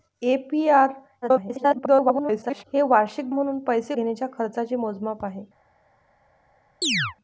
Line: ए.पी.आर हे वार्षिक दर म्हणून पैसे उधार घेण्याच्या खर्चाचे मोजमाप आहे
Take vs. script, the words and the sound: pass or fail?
fail